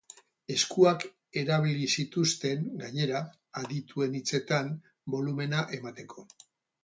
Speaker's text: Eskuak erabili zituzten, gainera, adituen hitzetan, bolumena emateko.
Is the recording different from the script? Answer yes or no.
no